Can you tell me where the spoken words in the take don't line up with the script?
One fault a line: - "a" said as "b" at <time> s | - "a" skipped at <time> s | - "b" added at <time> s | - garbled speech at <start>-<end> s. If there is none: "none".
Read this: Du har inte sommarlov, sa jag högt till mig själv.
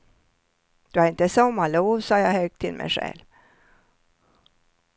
none